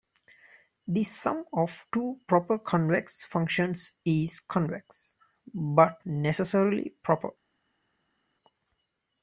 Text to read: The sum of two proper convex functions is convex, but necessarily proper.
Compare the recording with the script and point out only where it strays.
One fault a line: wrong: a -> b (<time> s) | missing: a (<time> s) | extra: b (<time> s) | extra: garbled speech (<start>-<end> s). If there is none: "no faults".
no faults